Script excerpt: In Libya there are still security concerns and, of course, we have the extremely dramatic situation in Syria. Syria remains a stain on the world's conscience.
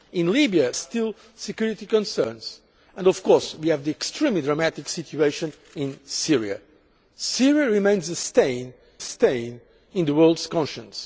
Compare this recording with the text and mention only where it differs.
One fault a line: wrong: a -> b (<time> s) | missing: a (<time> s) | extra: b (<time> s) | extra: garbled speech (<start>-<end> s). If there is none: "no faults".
missing: there are (0.7 s)
extra: stain (9.0 s)